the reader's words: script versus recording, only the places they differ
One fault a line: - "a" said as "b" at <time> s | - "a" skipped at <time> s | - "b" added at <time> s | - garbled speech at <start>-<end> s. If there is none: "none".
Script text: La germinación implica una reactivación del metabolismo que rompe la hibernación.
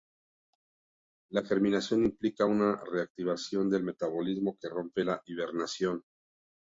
none